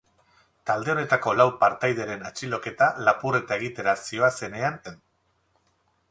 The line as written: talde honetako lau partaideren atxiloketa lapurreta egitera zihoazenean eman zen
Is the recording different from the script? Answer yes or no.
yes